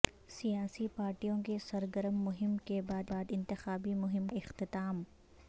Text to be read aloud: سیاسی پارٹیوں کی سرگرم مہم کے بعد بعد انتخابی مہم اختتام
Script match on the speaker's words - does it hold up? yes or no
yes